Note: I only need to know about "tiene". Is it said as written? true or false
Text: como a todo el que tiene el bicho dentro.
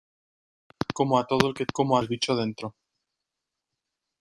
false